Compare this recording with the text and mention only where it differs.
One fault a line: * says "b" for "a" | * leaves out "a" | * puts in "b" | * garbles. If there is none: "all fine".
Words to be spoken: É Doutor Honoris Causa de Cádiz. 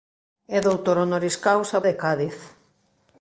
all fine